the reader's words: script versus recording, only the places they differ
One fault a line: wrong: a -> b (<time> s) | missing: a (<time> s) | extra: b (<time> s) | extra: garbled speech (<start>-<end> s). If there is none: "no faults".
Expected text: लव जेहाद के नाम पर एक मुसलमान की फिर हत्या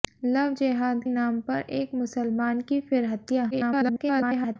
missing: के (1.0 s)
extra: garbled speech (3.5-4.6 s)